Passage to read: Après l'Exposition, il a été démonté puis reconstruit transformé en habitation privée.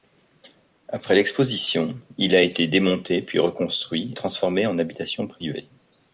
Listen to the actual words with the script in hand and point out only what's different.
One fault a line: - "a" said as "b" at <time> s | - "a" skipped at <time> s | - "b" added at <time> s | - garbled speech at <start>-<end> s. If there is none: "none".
none